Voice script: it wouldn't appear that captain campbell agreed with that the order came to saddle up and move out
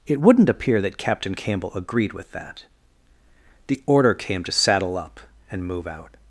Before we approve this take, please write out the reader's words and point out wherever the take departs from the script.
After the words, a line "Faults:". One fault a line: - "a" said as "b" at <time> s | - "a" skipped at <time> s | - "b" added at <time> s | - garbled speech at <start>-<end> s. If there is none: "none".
it wouldn't appear that captain campbell agreed with that the order came to saddle up and move out
Faults:
none